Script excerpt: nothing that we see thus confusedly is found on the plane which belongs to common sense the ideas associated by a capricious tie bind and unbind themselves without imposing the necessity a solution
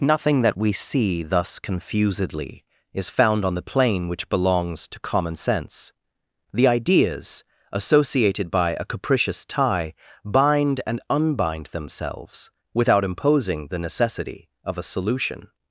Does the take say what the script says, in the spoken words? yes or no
no